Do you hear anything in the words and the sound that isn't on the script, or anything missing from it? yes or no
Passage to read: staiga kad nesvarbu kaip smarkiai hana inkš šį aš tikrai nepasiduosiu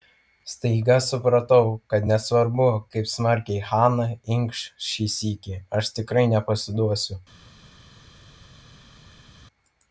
yes